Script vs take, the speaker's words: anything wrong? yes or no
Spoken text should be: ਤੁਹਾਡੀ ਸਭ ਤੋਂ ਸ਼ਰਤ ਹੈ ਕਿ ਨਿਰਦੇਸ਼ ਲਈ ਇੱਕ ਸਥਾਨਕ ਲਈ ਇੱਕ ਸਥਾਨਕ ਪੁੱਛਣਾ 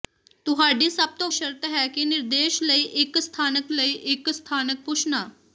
no